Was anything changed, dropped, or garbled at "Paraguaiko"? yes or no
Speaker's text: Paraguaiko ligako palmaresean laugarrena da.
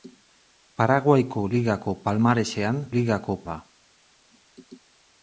no